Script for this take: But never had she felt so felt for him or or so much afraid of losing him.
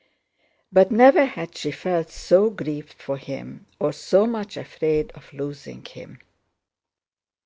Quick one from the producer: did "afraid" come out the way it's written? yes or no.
yes